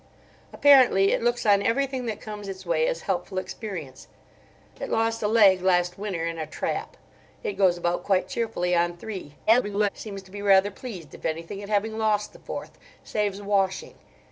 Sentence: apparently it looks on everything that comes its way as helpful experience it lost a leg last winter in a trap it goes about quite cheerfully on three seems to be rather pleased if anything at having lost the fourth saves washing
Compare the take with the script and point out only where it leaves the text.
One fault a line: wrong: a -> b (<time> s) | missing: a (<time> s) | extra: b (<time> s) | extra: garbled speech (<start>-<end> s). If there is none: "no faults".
extra: garbled speech (9.5-9.9 s)